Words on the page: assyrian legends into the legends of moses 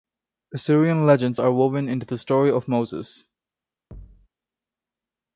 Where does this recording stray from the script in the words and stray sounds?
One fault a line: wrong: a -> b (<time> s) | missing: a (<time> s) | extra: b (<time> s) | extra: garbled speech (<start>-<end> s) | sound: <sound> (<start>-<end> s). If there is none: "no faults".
extra: are woven (1.4 s)
wrong: legends -> story (2.2 s)
sound: thud (3.9-4.3 s)